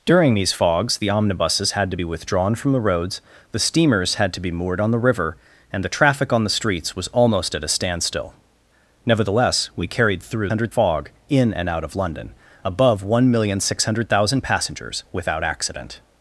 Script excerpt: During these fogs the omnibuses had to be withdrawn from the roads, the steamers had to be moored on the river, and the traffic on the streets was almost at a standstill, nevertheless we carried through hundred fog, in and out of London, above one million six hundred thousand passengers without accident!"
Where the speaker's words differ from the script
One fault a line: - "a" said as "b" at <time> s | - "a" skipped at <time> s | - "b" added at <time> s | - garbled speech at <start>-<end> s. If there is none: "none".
none